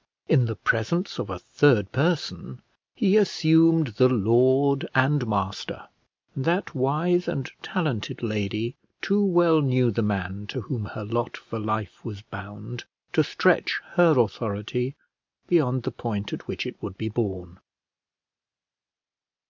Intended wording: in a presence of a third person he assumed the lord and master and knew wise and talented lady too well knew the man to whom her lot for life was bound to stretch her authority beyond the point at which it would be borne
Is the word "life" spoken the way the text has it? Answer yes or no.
yes